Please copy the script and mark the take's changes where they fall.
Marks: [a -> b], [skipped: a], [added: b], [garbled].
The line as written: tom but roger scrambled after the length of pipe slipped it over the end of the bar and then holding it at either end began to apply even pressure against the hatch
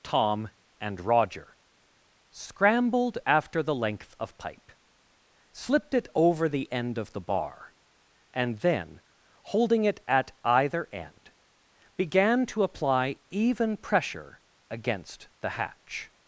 tom [but -> and] roger scrambled after the length of pipe slipped it over the end of the bar and then holding it at either end began to apply even pressure against the hatch